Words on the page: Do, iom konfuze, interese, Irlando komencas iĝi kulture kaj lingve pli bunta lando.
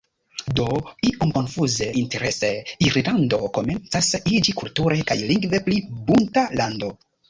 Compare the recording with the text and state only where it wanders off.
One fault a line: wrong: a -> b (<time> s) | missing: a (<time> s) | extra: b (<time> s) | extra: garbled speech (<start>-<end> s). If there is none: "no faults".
no faults